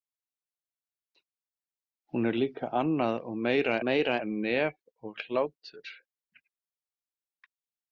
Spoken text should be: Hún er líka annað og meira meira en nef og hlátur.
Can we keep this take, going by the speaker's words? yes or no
yes